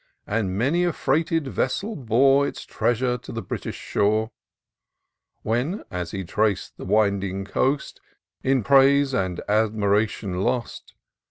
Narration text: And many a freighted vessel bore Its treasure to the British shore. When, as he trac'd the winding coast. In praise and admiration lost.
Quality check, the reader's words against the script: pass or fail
pass